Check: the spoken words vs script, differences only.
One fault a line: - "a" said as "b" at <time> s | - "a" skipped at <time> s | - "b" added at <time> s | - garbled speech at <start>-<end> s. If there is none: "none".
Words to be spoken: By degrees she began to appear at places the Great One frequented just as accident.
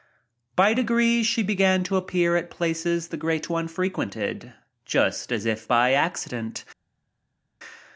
- "if by" added at 5.4 s